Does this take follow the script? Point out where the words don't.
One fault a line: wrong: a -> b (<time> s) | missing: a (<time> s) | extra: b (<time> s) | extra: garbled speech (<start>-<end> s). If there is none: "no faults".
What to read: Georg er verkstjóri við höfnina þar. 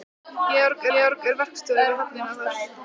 extra: georg (0.9 s)